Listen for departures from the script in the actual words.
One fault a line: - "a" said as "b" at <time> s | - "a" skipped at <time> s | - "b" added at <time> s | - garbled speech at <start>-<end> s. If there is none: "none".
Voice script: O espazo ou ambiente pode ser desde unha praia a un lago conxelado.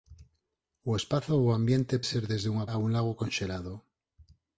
- "pode" skipped at 1.9 s
- "praia" skipped at 2.7 s